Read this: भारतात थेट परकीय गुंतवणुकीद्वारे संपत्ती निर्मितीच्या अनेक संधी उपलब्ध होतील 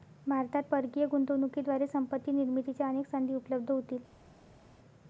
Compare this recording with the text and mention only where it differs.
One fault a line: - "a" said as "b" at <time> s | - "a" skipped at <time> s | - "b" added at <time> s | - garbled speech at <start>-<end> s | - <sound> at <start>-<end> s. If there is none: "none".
- "थेट" skipped at 0.6 s